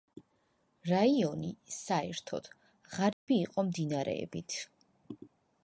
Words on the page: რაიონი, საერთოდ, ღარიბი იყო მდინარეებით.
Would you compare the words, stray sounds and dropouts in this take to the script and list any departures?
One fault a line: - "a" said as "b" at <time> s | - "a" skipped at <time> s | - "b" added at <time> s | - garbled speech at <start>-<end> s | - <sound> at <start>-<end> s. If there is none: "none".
- dropout at 3.1-3.3 s